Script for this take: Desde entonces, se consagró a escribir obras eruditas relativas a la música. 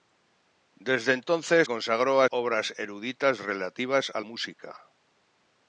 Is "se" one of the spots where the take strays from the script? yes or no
yes